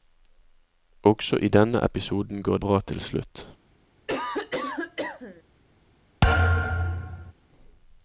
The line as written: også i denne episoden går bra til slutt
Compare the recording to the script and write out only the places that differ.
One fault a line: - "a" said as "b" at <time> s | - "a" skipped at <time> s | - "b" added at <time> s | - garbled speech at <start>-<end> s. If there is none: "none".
none